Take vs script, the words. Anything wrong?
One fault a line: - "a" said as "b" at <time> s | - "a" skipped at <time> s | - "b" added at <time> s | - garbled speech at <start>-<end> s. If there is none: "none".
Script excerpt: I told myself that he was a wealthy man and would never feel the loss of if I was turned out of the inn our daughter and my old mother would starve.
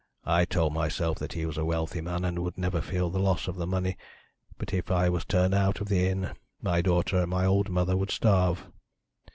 - "the money but" added at 3.6 s
- "our" said as "my" at 6.6 s